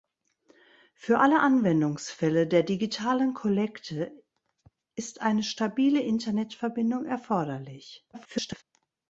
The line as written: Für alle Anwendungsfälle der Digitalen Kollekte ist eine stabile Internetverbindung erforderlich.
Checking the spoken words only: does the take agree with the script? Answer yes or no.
no